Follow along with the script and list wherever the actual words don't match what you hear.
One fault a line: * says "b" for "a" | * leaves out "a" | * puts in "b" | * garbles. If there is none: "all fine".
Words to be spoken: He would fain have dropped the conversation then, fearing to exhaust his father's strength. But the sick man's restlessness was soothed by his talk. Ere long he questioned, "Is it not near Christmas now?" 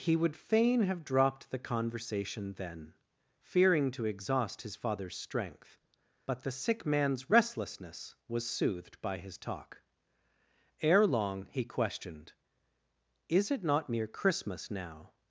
all fine